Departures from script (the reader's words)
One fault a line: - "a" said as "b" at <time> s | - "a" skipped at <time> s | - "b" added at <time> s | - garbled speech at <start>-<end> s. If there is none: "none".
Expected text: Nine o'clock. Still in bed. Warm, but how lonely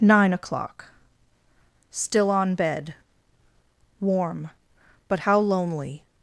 - "in" said as "on" at 2.3 s